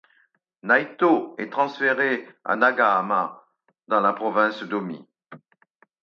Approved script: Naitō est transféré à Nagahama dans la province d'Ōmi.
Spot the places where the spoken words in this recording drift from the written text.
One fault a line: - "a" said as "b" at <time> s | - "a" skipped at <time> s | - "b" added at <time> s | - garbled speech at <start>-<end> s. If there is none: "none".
none